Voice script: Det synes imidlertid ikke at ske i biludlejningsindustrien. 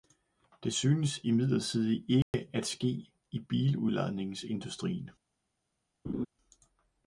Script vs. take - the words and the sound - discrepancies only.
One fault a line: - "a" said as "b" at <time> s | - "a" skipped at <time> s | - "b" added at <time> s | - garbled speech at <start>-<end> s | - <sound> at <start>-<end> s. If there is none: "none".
- dropout at 2.2-2.3 s
- laugh at 6.0-6.3 s